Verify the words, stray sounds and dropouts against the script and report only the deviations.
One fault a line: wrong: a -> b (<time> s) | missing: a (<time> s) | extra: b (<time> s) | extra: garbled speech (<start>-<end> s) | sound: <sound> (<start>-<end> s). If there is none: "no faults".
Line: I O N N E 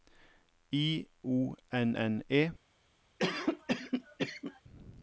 sound: cough (3.2-4.6 s)